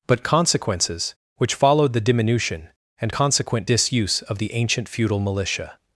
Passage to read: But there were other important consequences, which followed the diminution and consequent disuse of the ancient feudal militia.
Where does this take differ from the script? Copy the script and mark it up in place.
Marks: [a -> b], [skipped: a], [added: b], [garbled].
But [skipped: there were other important] consequences, which followed the diminution and consequent disuse of the ancient feudal militia.